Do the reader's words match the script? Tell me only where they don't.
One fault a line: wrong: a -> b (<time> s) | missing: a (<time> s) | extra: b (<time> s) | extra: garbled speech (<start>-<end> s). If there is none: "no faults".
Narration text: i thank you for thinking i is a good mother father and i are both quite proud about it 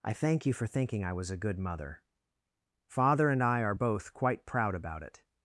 wrong: is -> was (1.1 s)